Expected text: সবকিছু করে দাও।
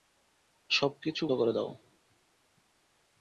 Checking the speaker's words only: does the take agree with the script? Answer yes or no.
yes